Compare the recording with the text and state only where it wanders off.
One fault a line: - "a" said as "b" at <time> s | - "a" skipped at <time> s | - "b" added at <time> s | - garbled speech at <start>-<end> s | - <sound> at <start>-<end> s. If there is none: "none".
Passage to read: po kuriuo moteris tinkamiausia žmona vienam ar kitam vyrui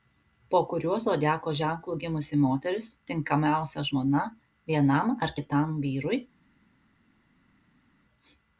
- "zodiako ženklu gimusi" added at 1.0 s